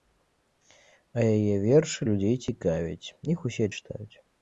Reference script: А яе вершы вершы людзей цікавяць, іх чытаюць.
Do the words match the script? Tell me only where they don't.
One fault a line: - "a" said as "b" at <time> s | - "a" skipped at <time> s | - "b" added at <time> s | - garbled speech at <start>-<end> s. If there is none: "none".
- "вершы" skipped at 2.0 s
- "усе" added at 3.5 s